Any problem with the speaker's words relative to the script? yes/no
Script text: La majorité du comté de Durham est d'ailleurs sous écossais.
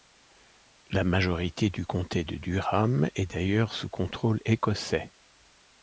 yes